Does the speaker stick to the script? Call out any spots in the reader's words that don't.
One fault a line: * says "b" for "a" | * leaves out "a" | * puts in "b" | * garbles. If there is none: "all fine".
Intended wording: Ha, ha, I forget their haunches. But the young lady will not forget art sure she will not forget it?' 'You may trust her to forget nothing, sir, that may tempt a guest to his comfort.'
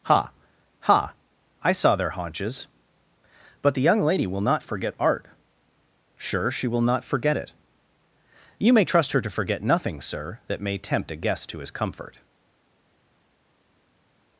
* says "saw" for "forget"